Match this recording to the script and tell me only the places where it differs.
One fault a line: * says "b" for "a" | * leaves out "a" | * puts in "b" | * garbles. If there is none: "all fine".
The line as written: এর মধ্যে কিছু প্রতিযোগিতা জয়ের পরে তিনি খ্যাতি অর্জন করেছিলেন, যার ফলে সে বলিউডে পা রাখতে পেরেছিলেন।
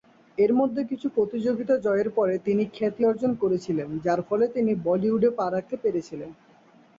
* says "তিনি" for "সে"